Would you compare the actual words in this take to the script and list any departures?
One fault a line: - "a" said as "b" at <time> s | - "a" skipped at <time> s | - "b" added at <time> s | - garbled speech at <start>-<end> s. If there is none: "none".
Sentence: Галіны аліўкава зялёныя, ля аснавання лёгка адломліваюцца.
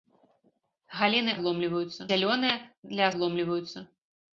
- "аліўкава" said as "адломліваюцца" at 1.4 s
- "аснавання лёгка" skipped at 3.0 s